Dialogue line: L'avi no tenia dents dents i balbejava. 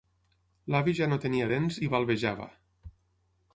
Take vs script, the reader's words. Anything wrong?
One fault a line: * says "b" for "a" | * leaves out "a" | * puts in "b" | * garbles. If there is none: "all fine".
* puts in "ja"
* leaves out "dents"